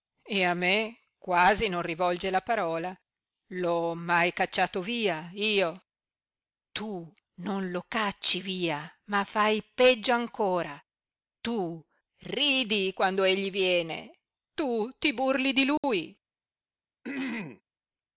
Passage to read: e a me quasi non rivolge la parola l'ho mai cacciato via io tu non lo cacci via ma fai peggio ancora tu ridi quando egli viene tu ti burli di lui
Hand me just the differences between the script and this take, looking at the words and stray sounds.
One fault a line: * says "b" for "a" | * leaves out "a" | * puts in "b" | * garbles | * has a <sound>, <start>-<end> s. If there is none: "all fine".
* has a dropout, 15.8-15.8 s
* has a throat clearing, 17.0-17.6 s